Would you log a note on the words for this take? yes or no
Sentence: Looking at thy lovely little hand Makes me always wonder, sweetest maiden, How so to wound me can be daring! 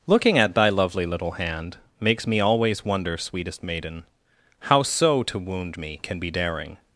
no